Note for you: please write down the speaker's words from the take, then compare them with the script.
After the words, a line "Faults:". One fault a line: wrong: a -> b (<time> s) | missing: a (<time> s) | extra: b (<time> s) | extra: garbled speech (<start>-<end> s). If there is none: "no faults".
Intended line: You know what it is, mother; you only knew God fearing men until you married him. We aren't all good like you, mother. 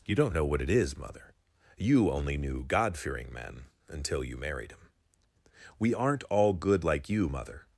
You don't know what it is, mother; you only knew God fearing men until you married him. We aren't all good like you, mother.
Faults:
extra: don't (0.1 s)